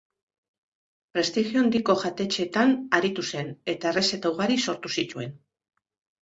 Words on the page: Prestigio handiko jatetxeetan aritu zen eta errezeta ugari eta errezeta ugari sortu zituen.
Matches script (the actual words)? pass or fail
fail